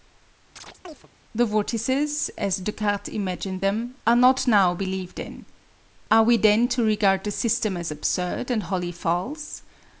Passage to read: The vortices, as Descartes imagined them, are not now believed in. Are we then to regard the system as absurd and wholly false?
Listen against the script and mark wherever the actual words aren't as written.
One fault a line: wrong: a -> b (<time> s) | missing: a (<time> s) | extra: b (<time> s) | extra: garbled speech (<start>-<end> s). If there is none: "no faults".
no faults